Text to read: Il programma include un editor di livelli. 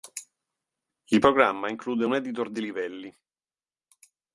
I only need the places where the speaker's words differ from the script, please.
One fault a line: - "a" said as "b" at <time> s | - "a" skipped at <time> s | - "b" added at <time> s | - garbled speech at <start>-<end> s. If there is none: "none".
none